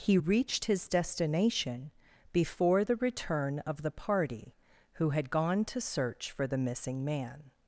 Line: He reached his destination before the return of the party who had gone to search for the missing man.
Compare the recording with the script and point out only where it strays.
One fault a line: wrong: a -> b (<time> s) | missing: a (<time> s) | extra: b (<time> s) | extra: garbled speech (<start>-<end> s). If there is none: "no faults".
no faults